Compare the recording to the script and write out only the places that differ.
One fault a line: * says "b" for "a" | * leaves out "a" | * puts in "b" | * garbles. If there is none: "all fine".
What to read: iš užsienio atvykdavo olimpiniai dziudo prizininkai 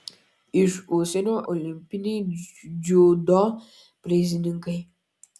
* leaves out "atvykdavo"